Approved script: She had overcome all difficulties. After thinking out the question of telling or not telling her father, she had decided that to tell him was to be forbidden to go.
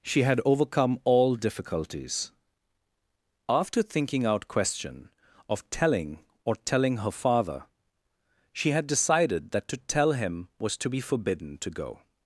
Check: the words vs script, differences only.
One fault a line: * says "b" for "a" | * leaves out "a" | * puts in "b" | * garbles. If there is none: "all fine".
* leaves out "the"
* leaves out "not"